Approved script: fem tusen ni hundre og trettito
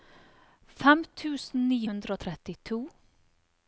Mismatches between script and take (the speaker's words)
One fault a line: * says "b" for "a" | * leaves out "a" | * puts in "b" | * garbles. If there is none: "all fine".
all fine